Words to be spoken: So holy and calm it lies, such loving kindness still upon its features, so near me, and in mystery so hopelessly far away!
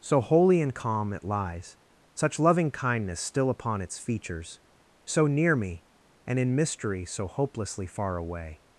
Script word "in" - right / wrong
right